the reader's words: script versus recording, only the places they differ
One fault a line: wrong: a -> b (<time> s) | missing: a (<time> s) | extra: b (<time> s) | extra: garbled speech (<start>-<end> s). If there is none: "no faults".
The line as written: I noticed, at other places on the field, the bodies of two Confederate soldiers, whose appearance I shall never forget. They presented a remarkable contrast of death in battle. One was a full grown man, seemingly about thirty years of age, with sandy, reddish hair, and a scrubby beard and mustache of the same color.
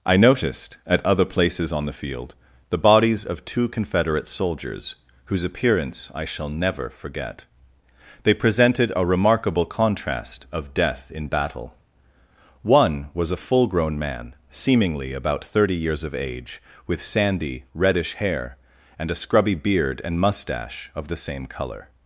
no faults